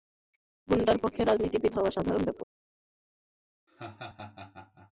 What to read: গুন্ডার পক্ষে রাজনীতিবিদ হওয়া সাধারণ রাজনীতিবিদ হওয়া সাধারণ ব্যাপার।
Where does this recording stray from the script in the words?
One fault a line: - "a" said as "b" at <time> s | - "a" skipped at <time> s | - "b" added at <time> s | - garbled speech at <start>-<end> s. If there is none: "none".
- "রাজনীতিবিদ হওয়া সাধারণ" skipped at 2.2 s